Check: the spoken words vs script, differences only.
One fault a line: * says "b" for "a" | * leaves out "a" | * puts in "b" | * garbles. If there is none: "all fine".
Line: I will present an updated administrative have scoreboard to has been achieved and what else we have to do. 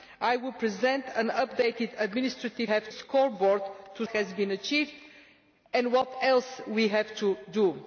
all fine